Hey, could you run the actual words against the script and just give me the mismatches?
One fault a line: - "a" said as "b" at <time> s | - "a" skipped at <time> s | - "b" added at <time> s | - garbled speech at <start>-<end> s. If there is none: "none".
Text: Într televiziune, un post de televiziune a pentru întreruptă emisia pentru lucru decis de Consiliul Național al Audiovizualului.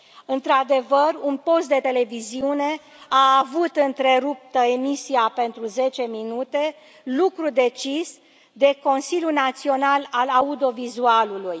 - "televiziune" said as "adevăr" at 0.5 s
- "pentru" said as "avut" at 3.4 s
- "zece minute" added at 5.6 s